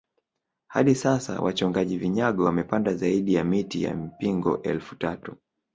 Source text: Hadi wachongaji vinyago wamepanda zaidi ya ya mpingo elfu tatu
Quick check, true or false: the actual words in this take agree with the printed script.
false